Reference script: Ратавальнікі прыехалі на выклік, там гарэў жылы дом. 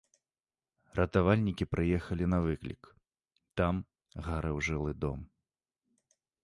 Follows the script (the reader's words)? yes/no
yes